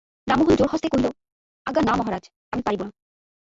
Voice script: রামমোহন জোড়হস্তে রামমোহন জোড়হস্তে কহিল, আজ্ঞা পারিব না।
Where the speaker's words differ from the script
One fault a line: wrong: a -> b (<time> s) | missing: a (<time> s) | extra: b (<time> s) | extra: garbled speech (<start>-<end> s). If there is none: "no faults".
wrong: রামমোহন জোড়হস্তে কহিল আজ্ঞা -> কহিল আজ্ঞা না মহারাজ আমি (0.9 s)